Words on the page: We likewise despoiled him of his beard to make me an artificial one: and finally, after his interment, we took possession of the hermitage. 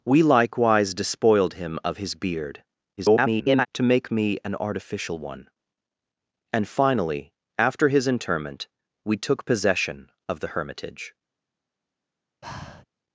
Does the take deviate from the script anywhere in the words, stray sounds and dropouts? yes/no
yes